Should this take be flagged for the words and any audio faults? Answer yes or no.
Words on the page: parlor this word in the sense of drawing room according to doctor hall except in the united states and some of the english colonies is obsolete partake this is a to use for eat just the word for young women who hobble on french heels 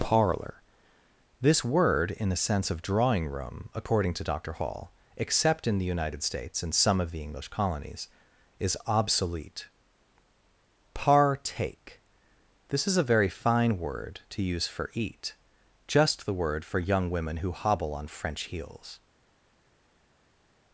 yes